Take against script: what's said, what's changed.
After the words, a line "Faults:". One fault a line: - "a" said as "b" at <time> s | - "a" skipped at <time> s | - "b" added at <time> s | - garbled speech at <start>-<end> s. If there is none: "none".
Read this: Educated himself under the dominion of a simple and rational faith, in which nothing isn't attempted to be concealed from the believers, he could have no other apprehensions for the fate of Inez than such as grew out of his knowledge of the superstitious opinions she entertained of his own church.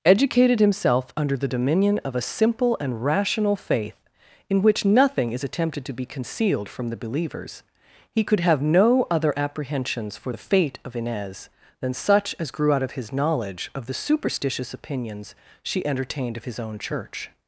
Educated himself under the dominion of a simple and rational faith, in which nothing is attempted to be concealed from the believers, he could have no other apprehensions for the fate of Inez than such as grew out of his knowledge of the superstitious opinions she entertained of his own church.
Faults:
- "isn't" said as "is" at 5.3 s